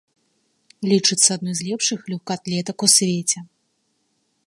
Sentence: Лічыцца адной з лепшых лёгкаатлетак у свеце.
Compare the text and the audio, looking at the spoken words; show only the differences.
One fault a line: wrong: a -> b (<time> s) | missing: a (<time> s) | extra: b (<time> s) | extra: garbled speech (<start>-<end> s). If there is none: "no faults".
no faults